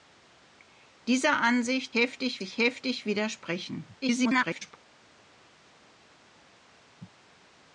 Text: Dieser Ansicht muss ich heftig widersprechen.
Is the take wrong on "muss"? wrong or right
wrong